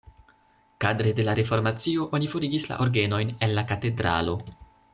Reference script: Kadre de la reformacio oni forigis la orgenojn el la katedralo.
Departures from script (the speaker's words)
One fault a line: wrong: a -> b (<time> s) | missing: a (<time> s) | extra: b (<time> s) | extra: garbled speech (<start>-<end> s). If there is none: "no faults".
no faults